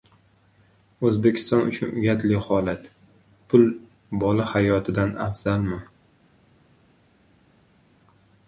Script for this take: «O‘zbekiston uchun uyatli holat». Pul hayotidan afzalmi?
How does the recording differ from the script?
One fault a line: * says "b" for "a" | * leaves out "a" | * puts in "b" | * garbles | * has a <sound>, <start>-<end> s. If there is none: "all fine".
* puts in "bola"